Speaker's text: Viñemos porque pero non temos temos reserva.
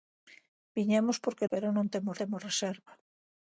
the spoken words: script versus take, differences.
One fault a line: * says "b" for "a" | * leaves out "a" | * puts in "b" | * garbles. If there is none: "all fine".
all fine